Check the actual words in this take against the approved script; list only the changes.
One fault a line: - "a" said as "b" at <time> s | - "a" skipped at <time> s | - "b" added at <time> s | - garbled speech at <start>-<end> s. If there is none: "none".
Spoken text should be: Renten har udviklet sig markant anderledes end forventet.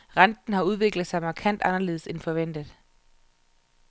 none